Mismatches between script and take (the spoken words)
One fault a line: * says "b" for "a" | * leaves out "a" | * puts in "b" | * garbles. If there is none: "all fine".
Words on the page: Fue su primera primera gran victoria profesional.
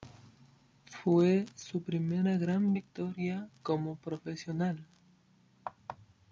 * leaves out "primera"
* puts in "como"